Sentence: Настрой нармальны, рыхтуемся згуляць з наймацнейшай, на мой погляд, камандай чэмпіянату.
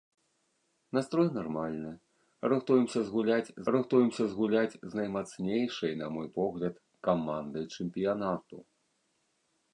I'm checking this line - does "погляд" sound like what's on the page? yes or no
yes